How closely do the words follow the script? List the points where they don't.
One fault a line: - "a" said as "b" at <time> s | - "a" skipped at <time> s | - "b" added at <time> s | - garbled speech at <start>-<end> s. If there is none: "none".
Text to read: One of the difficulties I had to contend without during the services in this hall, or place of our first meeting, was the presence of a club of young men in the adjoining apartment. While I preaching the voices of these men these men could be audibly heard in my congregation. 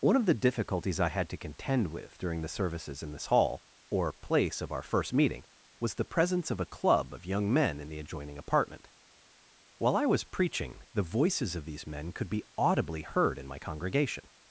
- "without" said as "with" at 1.9 s
- "was" added at 10.1 s
- "these men" skipped at 12.1 s